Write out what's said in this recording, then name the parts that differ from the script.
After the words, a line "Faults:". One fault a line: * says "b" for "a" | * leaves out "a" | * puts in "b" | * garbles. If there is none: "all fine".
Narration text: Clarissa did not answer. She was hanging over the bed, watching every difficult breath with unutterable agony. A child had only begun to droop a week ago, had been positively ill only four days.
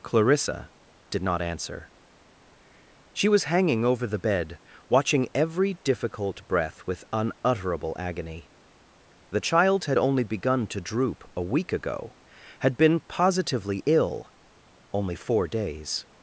Clarissa did not answer. She was hanging over the bed, watching every difficult breath with unutterable agony. The child had only begun to droop a week ago, had been positively ill only four days.
Faults:
* says "The" for "A"